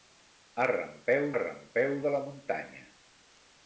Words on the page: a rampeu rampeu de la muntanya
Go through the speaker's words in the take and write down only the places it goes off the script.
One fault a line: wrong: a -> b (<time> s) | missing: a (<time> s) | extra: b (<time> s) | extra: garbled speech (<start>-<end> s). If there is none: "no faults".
no faults